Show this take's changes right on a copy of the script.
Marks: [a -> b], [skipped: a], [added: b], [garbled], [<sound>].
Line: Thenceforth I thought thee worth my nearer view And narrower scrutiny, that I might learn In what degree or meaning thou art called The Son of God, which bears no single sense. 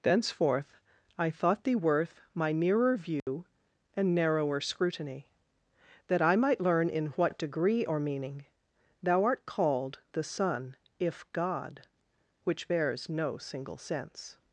Thenceforth I thought thee worth my nearer view [dropout] And narrower scrutiny, that I might learn In what degree or meaning thou art called The Son [of -> if] God, which bears no single sense.